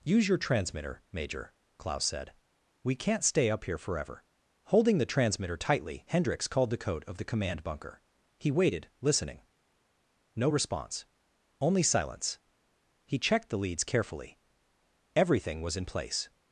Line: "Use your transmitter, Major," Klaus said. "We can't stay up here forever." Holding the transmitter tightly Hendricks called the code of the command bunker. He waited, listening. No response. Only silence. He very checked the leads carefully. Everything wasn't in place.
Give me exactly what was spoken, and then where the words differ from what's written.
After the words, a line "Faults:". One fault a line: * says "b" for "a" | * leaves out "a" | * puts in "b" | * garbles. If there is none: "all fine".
"Use your transmitter, Major," Klaus said. "We can't stay up here forever." Holding the transmitter tightly Hendricks called the code of the command bunker. He waited, listening. No response. Only silence. He checked the leads carefully. Everything was in place.
Faults:
* leaves out "very"
* says "was" for "wasn't"